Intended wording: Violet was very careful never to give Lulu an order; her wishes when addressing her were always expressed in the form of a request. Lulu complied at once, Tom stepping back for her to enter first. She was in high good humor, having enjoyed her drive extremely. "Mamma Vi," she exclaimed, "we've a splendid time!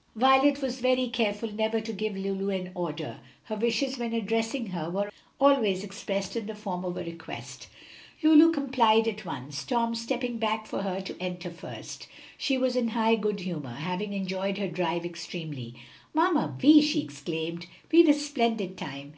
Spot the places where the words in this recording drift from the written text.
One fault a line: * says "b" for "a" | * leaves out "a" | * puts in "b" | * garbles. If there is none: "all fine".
all fine